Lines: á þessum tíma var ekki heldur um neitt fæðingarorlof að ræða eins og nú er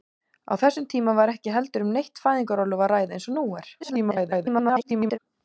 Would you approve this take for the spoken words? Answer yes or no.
no